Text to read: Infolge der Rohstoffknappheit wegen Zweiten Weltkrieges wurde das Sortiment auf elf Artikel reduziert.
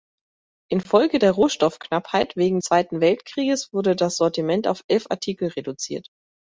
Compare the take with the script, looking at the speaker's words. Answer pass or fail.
pass